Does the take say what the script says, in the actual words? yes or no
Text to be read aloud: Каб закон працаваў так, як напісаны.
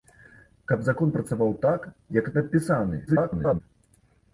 no